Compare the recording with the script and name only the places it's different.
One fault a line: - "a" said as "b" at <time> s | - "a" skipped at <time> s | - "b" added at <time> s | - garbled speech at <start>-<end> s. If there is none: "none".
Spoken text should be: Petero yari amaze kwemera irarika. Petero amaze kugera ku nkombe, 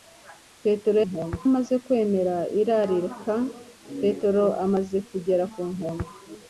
- "yari" said as "nkombe" at 1.1 s